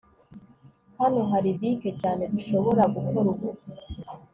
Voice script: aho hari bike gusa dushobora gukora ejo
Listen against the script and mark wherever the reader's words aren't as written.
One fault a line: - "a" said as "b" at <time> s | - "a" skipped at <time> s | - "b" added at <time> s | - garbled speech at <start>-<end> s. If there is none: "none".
- "aho" said as "hano" at 1.0 s
- "gusa" said as "cyane" at 2.0 s
- "ejo" said as "ubu" at 3.3 s